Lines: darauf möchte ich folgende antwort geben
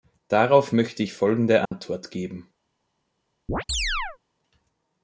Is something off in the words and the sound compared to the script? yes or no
yes